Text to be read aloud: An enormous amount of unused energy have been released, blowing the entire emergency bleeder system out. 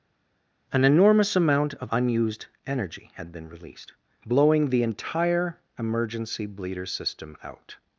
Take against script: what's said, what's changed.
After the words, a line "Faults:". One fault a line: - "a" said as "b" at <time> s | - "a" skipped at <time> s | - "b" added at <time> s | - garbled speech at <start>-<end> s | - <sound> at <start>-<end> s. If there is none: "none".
An enormous amount of unused energy had been released, blowing the entire emergency bleeder system out.
Faults:
- "have" said as "had" at 3.2 s